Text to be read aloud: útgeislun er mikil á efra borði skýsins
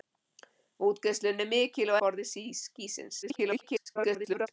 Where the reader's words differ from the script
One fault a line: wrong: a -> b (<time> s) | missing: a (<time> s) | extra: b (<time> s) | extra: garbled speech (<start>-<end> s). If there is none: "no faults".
missing: efra (2.0 s)
extra: garbled speech (3.2-4.5 s)